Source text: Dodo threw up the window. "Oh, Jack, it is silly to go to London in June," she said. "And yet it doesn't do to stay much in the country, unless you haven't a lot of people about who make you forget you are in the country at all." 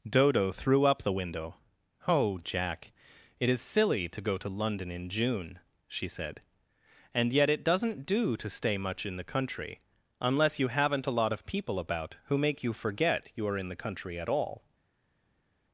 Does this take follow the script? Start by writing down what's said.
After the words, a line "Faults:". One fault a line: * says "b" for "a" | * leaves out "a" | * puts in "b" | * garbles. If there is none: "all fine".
Dodo threw up the window. "Oh, Jack, it is silly to go to London in June," she said. "And yet it doesn't do to stay much in the country, unless you haven't a lot of people about who make you forget you are in the country at all."
Faults:
all fine